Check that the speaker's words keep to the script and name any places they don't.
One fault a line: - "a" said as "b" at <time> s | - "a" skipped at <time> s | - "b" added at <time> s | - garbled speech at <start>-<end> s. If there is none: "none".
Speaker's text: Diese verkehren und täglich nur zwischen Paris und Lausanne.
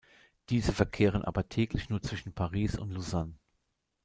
- "und" said as "aber" at 1.2 s